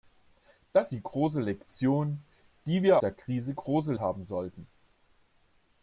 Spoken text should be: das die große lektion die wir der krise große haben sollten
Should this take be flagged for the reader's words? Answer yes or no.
no